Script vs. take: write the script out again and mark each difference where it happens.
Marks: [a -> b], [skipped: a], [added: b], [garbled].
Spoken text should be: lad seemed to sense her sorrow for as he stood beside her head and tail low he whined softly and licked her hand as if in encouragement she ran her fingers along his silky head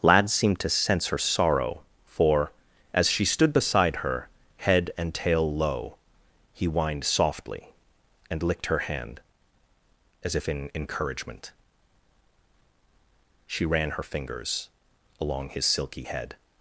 lad seemed to sense her sorrow for as [he -> she] stood beside her head and tail low he whined softly and licked her hand as if in encouragement she ran her fingers along his silky head